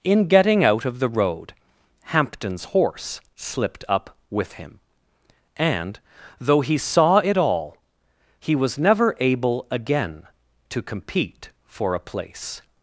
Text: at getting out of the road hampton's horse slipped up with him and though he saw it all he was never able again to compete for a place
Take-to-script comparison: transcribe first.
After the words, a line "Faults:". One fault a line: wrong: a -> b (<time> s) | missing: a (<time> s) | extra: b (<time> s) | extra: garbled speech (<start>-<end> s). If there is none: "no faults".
in getting out of the road hampton's horse slipped up with him and though he saw it all he was never able again to compete for a place
Faults:
wrong: at -> in (0.0 s)